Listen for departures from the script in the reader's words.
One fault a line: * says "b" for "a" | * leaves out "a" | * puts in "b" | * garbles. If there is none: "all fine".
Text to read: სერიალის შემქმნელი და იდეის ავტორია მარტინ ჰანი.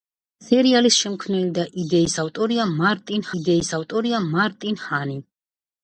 * puts in "იდეის ავტორია მარტინ"